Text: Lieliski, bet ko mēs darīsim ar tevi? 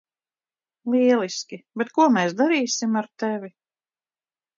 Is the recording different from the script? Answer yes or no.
no